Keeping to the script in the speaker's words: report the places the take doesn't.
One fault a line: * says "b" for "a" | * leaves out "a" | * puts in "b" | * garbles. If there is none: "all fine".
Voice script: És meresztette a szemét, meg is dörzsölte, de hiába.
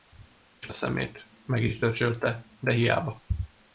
* leaves out "meresztette"